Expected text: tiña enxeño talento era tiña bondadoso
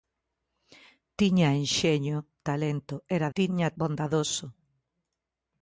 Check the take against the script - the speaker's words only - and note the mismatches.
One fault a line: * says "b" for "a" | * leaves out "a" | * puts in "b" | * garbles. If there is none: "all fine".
all fine